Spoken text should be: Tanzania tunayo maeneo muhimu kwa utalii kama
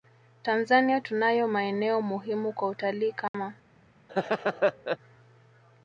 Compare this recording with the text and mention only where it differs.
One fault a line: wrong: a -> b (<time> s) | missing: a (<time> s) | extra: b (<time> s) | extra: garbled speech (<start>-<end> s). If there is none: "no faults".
no faults